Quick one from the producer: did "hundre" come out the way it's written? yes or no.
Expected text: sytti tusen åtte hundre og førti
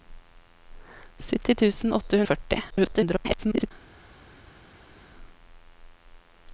no